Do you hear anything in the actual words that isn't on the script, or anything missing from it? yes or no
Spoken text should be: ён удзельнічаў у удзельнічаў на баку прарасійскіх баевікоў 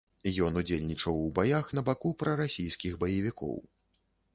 yes